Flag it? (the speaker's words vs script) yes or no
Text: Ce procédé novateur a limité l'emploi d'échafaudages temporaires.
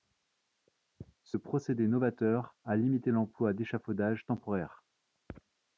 no